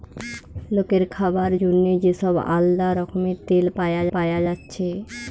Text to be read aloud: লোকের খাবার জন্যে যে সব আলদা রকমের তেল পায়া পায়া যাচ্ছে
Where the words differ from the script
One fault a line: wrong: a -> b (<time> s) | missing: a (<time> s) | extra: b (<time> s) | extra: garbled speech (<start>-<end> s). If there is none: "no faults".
no faults